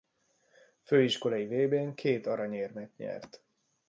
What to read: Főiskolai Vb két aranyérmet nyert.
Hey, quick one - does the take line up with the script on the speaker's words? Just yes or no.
no